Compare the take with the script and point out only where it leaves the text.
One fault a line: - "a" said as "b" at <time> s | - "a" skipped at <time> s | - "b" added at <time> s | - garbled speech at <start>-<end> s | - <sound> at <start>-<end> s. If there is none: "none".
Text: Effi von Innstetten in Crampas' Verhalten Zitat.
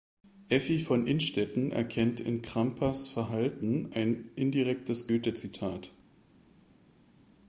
- "erkennt" added at 1.7 s
- "ein indirektes Goethe" added at 3.9 s